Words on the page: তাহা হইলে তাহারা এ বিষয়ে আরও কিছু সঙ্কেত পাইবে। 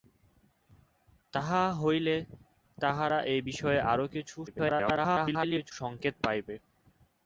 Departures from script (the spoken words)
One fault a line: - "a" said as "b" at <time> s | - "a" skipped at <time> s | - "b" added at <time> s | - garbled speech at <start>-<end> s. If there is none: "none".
- garbled speech at 4.5-5.7 s